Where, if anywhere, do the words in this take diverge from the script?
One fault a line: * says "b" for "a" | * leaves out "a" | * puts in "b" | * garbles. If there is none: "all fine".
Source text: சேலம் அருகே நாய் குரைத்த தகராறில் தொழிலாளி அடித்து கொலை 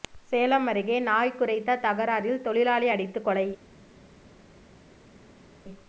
all fine